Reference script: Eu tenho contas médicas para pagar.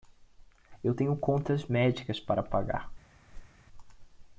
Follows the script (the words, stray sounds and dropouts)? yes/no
no